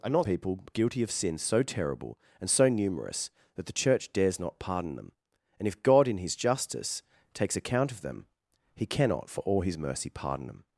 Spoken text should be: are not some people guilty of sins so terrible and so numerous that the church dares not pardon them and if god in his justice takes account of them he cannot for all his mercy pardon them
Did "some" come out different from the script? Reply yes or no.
yes